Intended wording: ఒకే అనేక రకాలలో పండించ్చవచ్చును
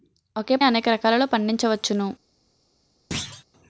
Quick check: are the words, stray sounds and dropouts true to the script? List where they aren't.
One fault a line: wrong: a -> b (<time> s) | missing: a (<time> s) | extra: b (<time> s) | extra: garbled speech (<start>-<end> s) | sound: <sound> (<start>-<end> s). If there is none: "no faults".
sound: thud (3.1-3.4 s)